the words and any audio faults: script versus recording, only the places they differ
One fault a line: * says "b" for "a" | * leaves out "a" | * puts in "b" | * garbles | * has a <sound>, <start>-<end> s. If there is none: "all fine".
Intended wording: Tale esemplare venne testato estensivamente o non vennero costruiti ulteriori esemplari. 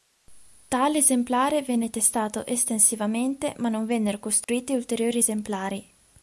* says "ma" for "o"
* has a dropout, 4.4-4.5 s